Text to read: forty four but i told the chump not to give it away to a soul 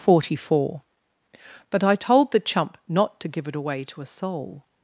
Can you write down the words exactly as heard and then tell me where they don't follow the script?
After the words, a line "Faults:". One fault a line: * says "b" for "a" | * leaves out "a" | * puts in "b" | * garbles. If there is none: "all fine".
forty four but i told the chump not to give it away to a soul
Faults:
all fine